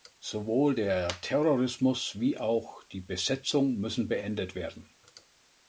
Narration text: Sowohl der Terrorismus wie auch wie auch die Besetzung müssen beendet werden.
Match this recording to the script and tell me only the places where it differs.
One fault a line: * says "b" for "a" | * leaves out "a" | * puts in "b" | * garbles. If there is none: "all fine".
* leaves out "wie auch"